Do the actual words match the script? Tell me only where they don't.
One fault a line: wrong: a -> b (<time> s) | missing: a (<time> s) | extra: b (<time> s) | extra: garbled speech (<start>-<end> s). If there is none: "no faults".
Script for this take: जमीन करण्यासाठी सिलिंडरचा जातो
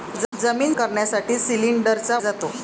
no faults